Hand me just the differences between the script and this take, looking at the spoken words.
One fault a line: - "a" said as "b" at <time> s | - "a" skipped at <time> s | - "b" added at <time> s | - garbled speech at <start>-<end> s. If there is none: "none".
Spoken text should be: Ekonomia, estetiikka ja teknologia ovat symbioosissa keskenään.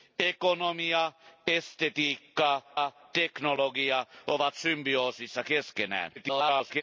- "ja" added at 2.7 s
- garbled speech at 6.1-6.8 s